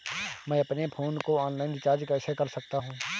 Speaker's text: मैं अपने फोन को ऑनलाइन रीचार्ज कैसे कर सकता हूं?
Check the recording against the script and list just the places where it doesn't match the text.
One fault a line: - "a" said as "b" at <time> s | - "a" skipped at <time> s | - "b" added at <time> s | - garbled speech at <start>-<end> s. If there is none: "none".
none